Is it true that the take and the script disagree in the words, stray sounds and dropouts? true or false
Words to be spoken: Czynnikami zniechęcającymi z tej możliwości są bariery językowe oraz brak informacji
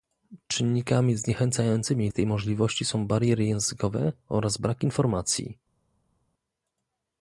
false